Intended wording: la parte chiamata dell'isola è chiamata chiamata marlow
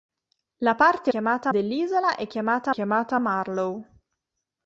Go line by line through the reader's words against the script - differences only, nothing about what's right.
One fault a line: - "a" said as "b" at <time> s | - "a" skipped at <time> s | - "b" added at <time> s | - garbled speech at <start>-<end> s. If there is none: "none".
none